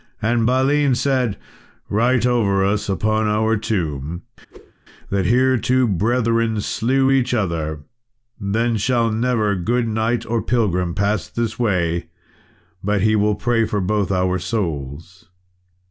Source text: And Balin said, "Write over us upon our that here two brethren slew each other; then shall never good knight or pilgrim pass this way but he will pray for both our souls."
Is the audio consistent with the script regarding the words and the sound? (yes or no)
no